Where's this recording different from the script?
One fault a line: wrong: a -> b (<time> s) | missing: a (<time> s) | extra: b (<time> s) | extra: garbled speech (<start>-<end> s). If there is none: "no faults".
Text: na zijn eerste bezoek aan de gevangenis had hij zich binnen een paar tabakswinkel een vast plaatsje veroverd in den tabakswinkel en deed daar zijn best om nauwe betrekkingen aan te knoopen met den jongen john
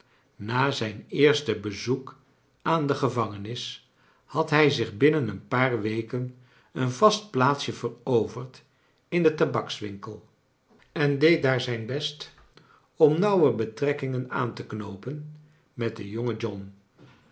wrong: tabakswinkel -> weken (5.8 s)